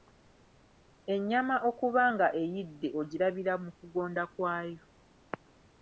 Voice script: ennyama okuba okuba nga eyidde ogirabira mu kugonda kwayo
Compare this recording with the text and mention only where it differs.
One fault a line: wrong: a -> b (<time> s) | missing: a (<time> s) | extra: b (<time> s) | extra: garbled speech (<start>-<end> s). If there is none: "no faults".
missing: okuba (2.0 s)